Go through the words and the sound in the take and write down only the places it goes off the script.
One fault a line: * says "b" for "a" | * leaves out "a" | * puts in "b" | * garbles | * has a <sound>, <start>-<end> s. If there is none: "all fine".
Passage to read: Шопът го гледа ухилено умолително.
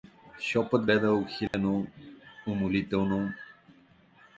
* leaves out "го"
* has a dropout, 1.5-1.5 s